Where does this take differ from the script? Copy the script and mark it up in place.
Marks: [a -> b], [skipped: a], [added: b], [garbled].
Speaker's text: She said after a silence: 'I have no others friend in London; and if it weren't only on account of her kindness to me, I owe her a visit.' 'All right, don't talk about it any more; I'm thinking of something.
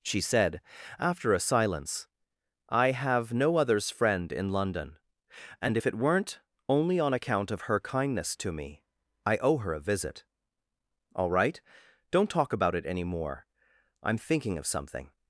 She said after a silence: 'I have no others friend in London; and if it weren't only on account of her kindness to me, I owe her a visit.' 'All right, don't talk about it any more; I'm thinking of something.